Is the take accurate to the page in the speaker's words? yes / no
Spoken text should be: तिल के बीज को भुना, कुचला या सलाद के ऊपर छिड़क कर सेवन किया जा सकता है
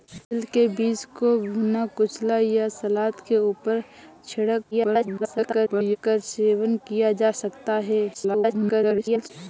no